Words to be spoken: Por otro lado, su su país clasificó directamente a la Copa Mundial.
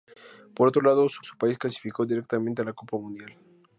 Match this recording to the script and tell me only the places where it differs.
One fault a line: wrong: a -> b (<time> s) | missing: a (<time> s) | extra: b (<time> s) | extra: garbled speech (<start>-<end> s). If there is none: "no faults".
no faults